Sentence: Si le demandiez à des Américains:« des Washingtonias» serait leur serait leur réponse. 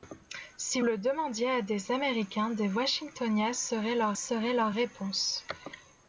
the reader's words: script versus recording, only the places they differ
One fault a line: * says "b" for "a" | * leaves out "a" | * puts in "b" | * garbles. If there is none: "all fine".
all fine